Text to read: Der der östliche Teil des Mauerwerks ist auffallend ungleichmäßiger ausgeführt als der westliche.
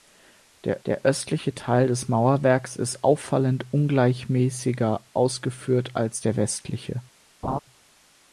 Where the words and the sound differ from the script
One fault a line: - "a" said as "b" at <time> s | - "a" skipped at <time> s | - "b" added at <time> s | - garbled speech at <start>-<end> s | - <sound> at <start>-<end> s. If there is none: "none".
- laugh at 7.4-7.6 s